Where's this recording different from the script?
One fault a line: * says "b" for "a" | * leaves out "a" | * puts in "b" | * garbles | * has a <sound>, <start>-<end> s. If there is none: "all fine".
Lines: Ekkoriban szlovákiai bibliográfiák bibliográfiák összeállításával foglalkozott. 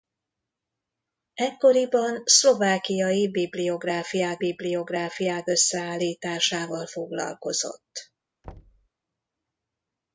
* has a thud, 8.4-8.9 s